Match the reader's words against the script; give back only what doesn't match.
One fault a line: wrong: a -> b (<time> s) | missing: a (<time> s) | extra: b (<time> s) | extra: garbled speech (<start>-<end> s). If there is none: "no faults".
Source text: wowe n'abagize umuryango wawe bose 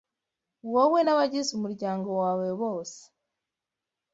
no faults